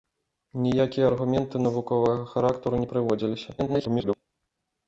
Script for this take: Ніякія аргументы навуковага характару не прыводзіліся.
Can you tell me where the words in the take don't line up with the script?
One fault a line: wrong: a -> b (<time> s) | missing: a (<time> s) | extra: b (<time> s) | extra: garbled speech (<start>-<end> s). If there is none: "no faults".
extra: garbled speech (3.6-4.1 s)